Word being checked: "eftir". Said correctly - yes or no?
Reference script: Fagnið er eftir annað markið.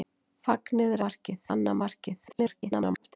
no